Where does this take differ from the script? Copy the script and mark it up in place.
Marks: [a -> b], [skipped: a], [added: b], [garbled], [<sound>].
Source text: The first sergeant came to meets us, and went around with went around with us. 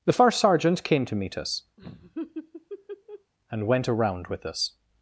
The first sergeant came to [meets -> meet] us, [laugh] and went around with [skipped: went around with] us.